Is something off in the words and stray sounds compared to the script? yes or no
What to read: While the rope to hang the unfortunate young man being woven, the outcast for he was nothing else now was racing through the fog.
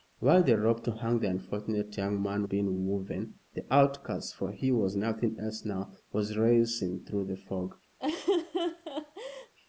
yes